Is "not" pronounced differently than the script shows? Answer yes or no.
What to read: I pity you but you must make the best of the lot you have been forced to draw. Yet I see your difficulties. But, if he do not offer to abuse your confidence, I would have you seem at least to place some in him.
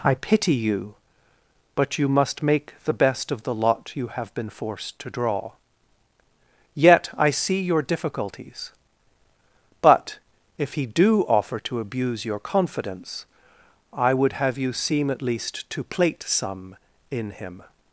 yes